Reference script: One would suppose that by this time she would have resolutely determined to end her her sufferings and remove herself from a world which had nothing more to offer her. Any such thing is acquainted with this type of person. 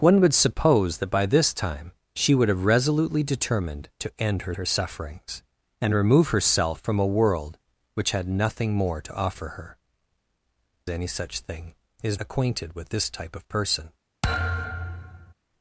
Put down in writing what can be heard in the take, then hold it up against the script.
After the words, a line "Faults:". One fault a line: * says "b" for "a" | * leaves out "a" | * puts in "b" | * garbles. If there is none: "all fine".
One would suppose that by this time she would have resolutely determined to end her her sufferings and remove herself from a world which had nothing more to offer her. Any such thing is acquainted with this type of person.
Faults:
all fine